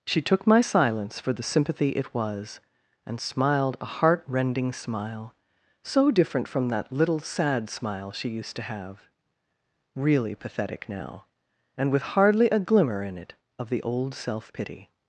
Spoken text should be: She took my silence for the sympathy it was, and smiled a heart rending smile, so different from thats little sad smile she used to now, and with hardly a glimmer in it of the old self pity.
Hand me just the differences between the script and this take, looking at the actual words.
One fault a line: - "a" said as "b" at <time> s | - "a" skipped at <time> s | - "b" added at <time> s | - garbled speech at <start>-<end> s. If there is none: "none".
- "thats" said as "that" at 6.7 s
- "have really pathetic" added at 8.6 s